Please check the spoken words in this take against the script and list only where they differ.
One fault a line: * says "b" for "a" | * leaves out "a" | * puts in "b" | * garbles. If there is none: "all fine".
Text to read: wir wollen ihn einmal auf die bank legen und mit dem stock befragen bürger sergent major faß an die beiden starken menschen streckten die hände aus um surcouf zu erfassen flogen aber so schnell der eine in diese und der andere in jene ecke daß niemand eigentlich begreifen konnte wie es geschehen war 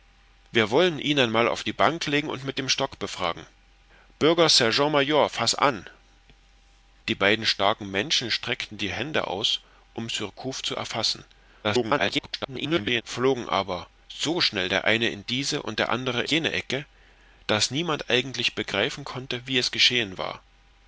* garbles
* leaves out "in"